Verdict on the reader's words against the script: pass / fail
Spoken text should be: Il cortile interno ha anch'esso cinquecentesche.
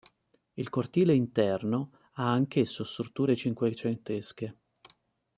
fail